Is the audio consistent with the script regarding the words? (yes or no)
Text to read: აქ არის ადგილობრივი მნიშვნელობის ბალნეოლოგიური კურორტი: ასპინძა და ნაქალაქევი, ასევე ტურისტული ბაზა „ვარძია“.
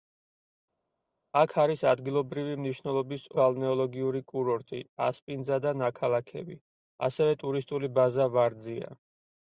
yes